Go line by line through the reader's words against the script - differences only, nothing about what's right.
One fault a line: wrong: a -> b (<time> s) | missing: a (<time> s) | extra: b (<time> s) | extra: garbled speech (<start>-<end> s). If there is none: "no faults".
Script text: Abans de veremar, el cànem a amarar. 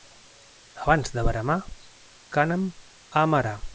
missing: el (1.6 s)